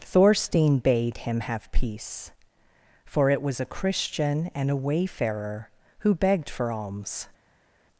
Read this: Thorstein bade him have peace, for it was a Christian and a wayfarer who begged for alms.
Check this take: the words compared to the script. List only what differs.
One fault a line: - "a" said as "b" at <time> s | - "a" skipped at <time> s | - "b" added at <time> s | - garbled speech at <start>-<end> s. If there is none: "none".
none